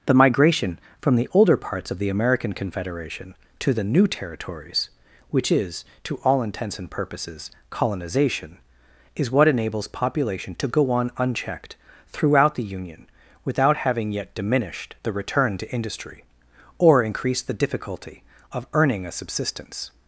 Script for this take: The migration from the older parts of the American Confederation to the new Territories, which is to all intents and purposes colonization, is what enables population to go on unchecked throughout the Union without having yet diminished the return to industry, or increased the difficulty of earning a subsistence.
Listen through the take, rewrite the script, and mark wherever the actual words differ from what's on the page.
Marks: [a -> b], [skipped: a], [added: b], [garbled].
The migration from the older parts of the American Confederation to the new Territories, which is to all intents and purposes colonization, is what enables population to go on unchecked throughout the Union without having yet diminished the return to industry, or increased the difficulty of earning a subsistence.